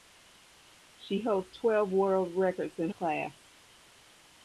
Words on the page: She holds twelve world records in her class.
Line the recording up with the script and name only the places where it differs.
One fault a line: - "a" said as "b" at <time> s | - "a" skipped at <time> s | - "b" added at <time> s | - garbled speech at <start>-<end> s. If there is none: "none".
- "her" skipped at 2.9 s